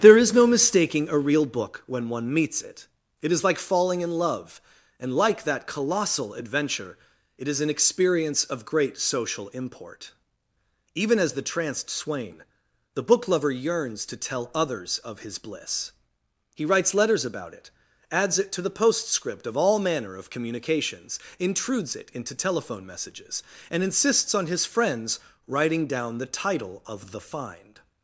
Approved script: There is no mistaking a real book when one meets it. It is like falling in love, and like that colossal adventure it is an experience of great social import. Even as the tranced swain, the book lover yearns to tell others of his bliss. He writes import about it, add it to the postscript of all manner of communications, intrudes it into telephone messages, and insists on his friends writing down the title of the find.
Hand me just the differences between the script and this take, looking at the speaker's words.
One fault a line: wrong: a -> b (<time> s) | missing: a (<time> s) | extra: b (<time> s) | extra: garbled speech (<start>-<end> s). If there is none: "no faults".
wrong: import -> letters (16.9 s)
wrong: add -> adds (18.1 s)